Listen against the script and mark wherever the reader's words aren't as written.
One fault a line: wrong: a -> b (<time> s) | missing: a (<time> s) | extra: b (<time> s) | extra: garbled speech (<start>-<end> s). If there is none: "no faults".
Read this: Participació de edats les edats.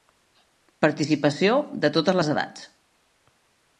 wrong: edats -> totes (2.0 s)